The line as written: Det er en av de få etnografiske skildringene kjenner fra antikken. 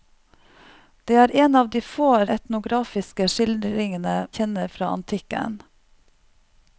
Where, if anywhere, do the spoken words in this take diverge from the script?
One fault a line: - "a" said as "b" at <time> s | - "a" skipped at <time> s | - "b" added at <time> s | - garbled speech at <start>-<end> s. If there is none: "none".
none